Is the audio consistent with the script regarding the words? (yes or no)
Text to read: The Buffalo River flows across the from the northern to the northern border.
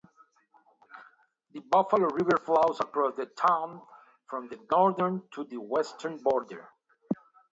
no